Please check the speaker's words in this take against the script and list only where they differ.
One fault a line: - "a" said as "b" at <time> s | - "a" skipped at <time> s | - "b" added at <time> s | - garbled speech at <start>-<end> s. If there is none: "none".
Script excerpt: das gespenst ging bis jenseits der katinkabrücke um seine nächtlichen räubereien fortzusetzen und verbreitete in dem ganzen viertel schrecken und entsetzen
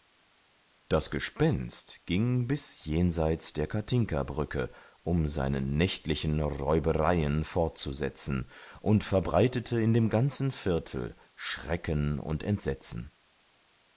none